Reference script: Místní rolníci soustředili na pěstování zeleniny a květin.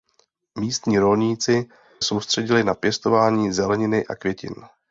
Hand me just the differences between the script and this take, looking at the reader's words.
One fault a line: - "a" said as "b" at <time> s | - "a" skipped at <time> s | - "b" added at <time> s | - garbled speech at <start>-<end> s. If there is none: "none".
none